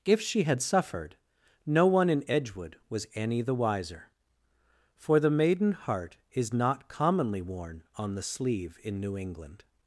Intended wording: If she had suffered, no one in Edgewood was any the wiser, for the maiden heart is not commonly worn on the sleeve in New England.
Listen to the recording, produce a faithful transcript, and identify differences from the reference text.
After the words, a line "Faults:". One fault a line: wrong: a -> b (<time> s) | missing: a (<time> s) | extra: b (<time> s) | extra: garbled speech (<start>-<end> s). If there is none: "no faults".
If she had suffered, no one in Edgewood was any the wiser, for the maiden heart is not commonly worn on the sleeve in New England.
Faults:
no faults